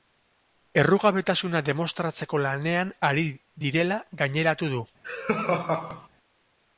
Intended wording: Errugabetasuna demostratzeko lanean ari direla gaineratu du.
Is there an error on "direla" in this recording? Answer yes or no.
no